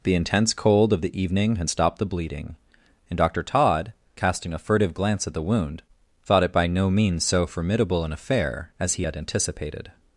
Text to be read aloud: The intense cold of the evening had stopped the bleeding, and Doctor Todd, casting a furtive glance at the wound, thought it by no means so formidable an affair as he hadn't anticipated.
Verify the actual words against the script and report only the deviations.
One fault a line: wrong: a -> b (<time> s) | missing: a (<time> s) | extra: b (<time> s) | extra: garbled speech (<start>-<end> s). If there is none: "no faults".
wrong: hadn't -> had (9.0 s)